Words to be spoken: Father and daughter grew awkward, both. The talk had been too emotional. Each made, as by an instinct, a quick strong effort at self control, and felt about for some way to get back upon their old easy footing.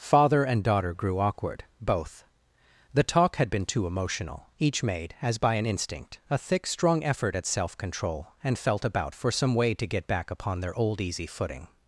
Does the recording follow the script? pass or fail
fail